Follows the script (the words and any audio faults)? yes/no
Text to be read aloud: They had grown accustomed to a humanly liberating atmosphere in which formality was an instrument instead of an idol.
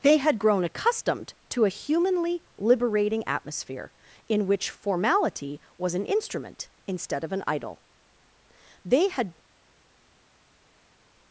no